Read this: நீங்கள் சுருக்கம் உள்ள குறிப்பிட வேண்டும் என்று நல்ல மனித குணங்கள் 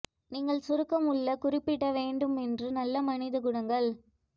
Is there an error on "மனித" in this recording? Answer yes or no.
no